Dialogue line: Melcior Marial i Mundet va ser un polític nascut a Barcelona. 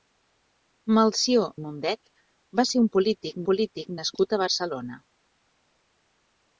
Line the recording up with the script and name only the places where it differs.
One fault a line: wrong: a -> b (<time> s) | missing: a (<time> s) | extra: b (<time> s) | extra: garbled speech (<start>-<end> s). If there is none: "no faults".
missing: Marial (1.5 s)
extra: polític (3.5 s)